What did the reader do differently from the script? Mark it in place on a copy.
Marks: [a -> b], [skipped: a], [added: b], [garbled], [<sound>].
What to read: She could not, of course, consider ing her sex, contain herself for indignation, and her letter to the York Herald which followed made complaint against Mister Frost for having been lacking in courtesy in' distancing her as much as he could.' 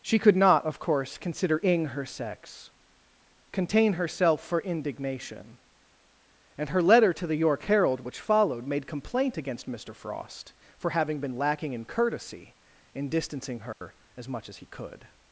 She could not, of course, consider ing her sex, contain herself for indignation, and her letter to the York Herald which followed made complaint against Mister Frost for having been lacking in courtesy in' distancing her [dropout] as much as he could.'